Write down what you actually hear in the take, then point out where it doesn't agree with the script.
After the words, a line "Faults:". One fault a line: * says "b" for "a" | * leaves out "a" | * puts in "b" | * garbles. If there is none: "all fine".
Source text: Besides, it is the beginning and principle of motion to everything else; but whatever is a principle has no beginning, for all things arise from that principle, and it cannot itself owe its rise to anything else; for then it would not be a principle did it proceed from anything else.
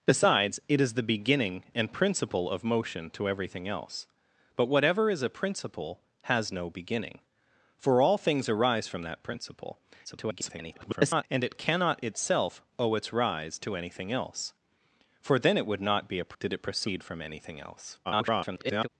Besides, it is the beginning and principle of motion to everything else; but whatever is a principle has no beginning, for all things arise from that principle, [garbled] and it cannot itself owe its rise to anything else; for then it would not be a did it proceed from anything else. [garbled]
Faults:
* garbles
* leaves out "principle"
* garbles